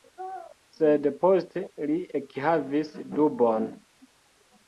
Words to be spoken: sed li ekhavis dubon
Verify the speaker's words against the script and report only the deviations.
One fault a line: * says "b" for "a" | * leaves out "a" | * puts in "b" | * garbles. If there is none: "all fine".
* puts in "poste"